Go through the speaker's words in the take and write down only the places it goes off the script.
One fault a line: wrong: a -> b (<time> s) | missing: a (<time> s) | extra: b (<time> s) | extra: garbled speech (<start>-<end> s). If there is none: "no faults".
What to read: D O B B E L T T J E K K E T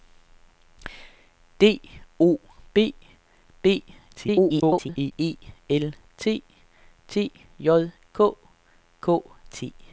extra: garbled speech (4.1-5.1 s)
missing: E (7.9 s)
missing: E (9.2 s)